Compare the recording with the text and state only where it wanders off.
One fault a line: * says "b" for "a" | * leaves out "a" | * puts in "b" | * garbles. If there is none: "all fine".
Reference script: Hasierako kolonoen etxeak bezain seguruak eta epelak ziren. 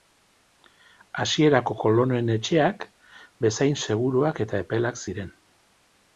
all fine